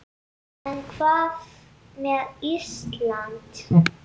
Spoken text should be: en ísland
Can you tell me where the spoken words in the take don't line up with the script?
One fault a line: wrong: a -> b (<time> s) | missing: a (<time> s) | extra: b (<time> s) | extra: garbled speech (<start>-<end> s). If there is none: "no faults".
extra: hvað með (1.0 s)